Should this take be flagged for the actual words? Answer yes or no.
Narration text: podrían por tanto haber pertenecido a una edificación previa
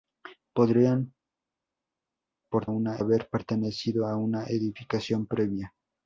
yes